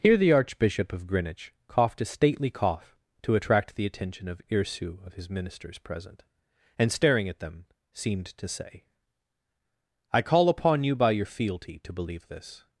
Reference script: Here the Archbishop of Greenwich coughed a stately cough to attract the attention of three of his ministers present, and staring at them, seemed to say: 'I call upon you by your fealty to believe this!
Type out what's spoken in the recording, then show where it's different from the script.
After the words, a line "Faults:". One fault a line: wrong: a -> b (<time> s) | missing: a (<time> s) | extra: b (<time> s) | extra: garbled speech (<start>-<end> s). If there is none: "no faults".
Here the Archbishop of Greenwich coughed a stately cough to attract the attention of irsu of his ministers present, and staring at them, seemed to say: 'I call upon you by your fealty to believe this!
Faults:
wrong: three -> irsu (4.5 s)